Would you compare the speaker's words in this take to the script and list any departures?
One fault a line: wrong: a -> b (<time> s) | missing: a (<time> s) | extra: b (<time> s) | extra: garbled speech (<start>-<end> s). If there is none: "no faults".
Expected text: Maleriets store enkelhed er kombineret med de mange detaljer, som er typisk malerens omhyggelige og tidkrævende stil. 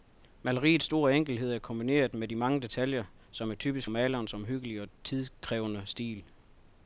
no faults